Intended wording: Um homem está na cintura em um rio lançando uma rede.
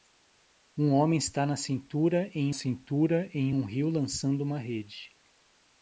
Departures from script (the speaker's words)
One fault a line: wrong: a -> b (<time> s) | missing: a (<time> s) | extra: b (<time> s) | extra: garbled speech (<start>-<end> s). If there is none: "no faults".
extra: cintura em (2.5 s)